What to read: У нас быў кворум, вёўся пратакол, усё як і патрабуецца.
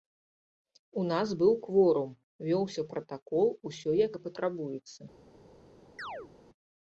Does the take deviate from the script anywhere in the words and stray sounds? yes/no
yes